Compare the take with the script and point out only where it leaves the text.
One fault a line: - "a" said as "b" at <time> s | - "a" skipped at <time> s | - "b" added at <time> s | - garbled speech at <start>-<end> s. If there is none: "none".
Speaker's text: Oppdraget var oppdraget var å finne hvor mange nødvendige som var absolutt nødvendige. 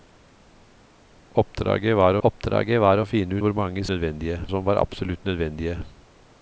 none